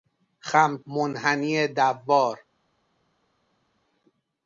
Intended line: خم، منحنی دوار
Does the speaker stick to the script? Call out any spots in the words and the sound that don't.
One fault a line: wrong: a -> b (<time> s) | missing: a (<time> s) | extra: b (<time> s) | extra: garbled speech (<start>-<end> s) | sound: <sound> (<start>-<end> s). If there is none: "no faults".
no faults